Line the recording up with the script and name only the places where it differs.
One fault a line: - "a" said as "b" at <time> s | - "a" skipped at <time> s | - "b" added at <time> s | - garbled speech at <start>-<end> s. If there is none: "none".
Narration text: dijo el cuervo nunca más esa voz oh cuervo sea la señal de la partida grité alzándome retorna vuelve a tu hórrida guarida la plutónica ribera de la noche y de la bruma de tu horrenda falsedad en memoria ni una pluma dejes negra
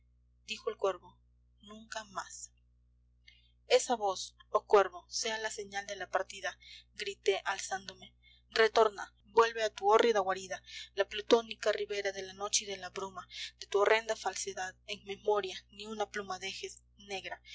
none